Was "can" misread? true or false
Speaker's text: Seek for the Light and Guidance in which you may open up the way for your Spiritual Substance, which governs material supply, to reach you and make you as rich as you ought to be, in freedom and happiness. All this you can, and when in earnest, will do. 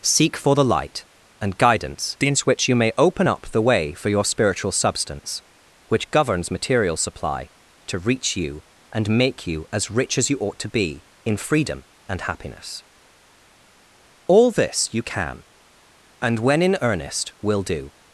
false